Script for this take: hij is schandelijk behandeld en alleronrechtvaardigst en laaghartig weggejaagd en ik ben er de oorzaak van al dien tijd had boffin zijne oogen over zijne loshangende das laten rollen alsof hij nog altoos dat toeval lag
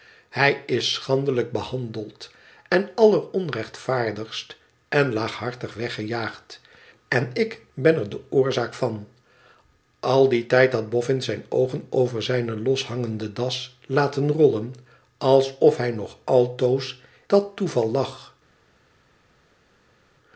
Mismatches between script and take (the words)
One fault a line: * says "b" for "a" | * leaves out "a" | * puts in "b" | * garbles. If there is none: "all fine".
all fine